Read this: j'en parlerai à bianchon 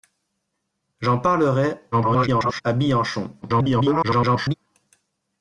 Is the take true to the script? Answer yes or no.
no